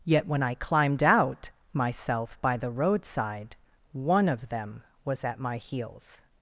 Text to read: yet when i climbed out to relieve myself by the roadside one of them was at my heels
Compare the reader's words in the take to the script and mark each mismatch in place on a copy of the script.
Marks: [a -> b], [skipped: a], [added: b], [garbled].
yet when i climbed out [skipped: to relieve] myself by the roadside one of them was at my heels